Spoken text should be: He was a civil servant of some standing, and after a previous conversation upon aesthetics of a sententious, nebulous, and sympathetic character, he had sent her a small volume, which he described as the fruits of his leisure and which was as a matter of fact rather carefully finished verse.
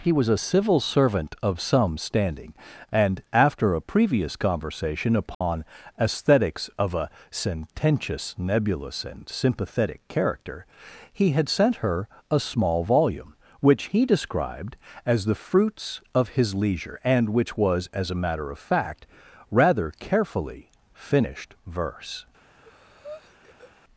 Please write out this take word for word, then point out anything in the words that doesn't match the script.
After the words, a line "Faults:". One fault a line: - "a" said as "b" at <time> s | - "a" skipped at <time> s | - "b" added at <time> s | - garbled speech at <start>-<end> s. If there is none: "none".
He was a civil servant of some standing, and after a previous conversation upon aesthetics of a sententious, nebulous, and sympathetic character, he had sent her a small volume, which he described as the fruits of his leisure and which was as a matter of fact rather carefully finished verse.
Faults:
none